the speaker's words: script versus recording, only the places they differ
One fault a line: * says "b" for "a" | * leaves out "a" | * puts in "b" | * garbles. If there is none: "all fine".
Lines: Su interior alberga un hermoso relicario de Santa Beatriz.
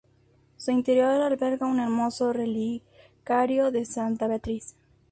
all fine